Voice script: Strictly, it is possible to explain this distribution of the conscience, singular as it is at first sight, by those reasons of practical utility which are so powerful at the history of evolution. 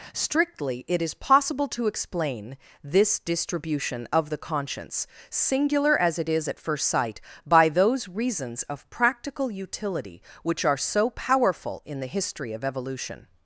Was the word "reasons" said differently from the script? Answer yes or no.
no